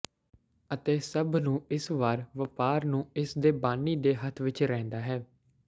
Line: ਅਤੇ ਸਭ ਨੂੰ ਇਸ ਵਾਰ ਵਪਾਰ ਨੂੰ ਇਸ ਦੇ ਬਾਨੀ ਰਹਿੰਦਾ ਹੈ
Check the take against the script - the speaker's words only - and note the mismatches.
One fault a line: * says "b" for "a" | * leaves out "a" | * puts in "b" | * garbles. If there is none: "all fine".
* puts in "ਦੇ ਹੱਥ ਵਿਚ"